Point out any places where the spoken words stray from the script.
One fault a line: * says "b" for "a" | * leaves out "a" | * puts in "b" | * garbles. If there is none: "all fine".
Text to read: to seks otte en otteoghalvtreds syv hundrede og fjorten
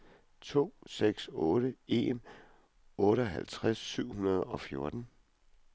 all fine